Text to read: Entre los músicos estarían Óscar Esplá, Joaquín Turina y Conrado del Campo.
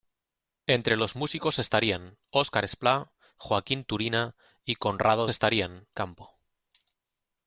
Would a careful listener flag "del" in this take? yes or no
yes